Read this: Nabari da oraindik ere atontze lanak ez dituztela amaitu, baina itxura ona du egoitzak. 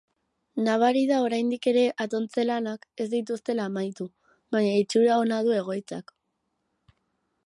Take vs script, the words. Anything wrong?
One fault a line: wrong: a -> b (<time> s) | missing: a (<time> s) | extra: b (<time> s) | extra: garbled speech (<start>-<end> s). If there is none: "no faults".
no faults